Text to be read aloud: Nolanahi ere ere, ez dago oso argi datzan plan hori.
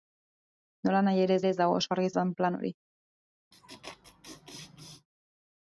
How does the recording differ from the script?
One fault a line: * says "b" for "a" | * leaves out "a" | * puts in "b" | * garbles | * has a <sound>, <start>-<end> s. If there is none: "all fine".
* has a laugh, 3.5-5.1 s